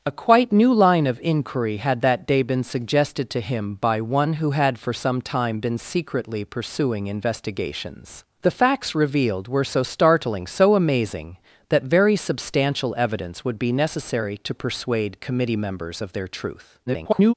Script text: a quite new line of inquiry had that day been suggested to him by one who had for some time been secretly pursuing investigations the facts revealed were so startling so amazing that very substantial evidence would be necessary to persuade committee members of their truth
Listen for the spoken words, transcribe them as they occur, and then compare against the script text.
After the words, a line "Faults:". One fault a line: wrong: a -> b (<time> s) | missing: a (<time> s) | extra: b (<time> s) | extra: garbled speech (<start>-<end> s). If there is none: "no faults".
a quite new line of inquiry had that day been suggested to him by one who had for some time been secretly pursuing investigations the facts revealed were so startling so amazing that very substantial evidence would be necessary to persuade committee members of their truth [garbled]
Faults:
extra: garbled speech (16.9-17.3 s)